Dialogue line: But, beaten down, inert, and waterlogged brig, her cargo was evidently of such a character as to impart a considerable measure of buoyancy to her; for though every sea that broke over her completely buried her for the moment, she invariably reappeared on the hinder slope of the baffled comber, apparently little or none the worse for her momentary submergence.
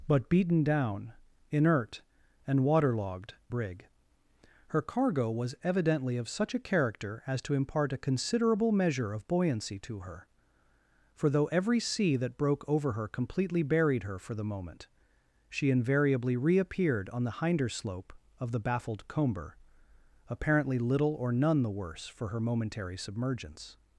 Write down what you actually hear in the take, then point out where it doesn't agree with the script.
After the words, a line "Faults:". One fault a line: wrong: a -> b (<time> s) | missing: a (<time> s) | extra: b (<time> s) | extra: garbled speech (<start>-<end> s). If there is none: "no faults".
But, beaten down, inert, and waterlogged brig, her cargo was evidently of such a character as to impart a considerable measure of buoyancy to her; for though every sea that broke over her completely buried her for the moment, she invariably reappeared on the hinder slope of the baffled comber, apparently little or none the worse for her momentary submergence.
Faults:
no faults